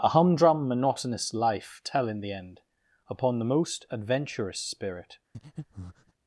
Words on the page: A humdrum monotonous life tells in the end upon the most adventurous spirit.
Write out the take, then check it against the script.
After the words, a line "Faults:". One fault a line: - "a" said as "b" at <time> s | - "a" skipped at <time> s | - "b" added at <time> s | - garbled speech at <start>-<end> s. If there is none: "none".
A humdrum monotonous life tell in the end upon the most adventurous spirit.
Faults:
- "tells" said as "tell" at 1.8 s